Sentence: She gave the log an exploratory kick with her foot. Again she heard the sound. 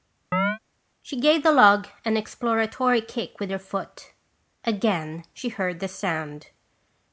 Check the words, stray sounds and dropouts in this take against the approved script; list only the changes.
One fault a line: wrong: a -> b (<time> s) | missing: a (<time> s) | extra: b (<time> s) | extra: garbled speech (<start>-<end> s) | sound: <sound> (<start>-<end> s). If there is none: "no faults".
sound: chirp (0.3-0.6 s)